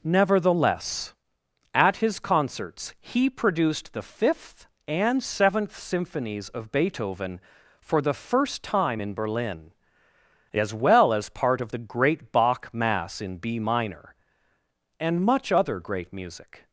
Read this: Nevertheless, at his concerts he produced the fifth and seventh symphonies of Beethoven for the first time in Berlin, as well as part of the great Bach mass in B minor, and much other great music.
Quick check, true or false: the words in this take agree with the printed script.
true